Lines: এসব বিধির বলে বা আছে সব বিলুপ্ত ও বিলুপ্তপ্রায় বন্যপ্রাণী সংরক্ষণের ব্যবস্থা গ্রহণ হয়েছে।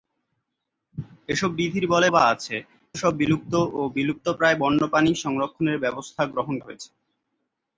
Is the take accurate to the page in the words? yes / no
yes